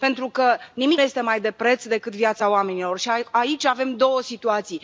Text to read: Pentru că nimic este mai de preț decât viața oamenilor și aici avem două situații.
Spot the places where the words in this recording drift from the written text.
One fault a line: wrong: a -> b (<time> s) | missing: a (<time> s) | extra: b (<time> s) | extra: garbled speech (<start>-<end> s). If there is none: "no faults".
no faults